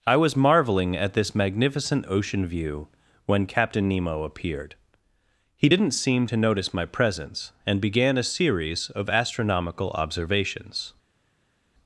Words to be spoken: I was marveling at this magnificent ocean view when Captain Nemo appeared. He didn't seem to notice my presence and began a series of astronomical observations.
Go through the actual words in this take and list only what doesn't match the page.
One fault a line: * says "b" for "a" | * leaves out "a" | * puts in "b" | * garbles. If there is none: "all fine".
all fine